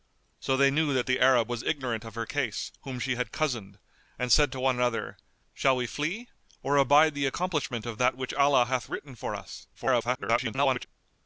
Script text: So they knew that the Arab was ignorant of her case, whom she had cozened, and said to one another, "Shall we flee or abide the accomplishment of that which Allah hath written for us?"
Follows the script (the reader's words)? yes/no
no